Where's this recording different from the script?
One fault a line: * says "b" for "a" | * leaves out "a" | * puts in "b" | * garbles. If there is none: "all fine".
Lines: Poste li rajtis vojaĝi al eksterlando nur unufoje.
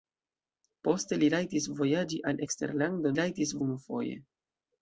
* says "rajtis" for "nur"